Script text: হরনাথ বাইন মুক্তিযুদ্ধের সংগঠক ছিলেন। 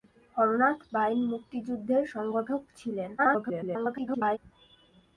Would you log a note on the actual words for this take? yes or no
yes